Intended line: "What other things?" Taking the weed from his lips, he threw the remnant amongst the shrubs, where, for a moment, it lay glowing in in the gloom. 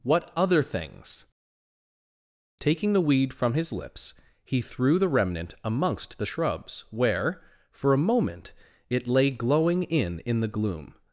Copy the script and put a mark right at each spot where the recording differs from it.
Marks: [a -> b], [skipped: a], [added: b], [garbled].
"What other things?" Taking the weed from his lips, he threw the remnant amongst the shrubs, where, for a moment, it lay glowing in in the gloom.